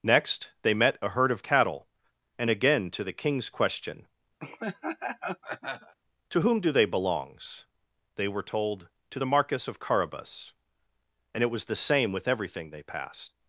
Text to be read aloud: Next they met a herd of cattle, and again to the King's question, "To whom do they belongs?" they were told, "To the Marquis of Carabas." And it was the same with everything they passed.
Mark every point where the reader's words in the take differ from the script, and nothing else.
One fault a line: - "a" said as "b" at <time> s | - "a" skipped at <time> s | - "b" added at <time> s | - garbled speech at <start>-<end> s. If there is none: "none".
none